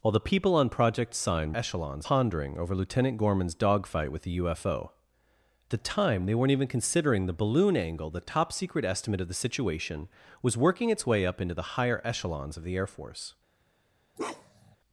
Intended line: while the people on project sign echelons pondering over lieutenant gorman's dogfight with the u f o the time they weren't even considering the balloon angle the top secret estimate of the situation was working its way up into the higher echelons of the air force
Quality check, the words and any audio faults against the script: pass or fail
fail